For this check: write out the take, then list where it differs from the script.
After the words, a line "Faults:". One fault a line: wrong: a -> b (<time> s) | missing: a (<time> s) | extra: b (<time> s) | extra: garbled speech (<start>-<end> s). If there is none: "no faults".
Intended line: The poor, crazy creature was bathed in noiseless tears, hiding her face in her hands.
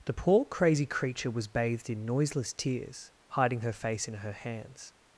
The poor, crazy creature was bathed in noiseless tears, hiding her face in her hands.
Faults:
no faults